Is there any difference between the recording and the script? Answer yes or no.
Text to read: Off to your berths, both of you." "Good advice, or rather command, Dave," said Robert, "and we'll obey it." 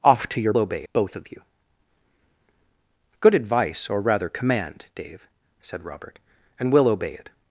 yes